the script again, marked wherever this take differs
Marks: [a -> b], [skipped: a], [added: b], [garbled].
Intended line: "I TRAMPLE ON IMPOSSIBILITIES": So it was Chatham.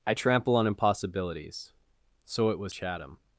"I TRAMPLE ON IMPOSSIBILITIES": So it was Chatham.